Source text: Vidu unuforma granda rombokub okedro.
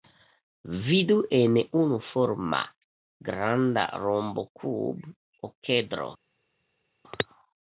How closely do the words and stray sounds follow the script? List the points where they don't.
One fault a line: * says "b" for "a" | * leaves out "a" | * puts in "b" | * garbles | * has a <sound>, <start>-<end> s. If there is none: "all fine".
* puts in "en"